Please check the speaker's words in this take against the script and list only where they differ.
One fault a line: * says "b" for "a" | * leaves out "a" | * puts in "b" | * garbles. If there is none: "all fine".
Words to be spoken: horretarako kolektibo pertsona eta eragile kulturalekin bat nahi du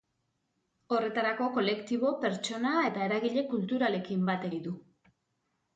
all fine